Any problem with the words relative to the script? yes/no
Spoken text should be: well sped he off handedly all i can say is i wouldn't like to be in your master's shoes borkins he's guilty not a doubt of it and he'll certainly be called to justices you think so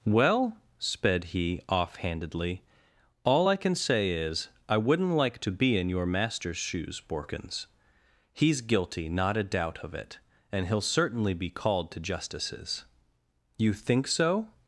no